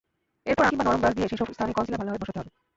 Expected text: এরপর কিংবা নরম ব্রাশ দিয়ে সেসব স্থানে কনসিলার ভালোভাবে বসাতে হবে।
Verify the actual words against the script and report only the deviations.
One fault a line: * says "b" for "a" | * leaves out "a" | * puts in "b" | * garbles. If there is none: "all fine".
all fine